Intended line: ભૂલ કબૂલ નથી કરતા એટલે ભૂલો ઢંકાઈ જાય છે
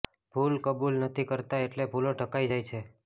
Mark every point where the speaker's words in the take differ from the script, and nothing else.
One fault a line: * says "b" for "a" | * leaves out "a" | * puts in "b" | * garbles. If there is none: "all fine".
all fine